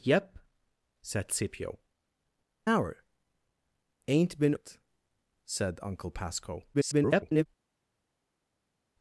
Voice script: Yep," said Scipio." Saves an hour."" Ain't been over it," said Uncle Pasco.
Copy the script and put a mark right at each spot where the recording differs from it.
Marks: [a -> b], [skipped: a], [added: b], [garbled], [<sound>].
Yep," said Scipio." [skipped: Saves an] hour."" Ain't been [skipped: over] it," said Uncle Pasco. [garbled]